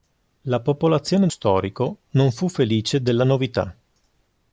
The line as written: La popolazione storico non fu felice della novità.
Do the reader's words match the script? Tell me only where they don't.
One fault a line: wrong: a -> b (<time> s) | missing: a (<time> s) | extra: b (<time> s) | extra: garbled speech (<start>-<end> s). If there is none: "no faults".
no faults